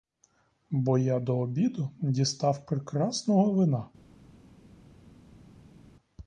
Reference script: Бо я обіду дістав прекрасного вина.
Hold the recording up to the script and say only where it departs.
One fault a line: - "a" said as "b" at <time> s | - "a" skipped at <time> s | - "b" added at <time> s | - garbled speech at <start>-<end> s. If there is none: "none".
- "до" added at 1.2 s